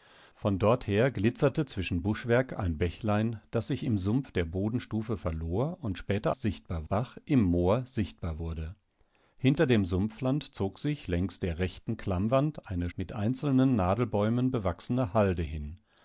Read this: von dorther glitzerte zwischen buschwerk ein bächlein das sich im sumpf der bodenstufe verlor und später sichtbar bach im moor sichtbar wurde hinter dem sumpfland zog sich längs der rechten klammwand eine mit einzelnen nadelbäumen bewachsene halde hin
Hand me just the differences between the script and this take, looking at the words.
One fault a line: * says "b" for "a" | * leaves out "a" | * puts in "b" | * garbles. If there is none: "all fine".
all fine